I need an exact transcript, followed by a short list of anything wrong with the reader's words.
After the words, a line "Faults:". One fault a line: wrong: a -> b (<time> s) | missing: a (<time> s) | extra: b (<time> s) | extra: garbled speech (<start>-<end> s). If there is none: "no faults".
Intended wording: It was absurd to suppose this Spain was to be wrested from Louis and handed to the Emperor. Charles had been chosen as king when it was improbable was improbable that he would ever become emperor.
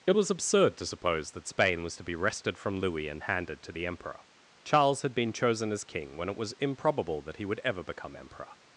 It was absurd to suppose that Spain was to be wrested from Louis and handed to the Emperor. Charles had been chosen as king when it was improbable that he would ever become emperor.
Faults:
wrong: this -> that (1.3 s)
missing: was improbable (7.2 s)